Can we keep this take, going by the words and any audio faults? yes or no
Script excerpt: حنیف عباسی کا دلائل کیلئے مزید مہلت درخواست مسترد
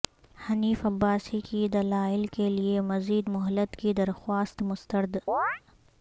no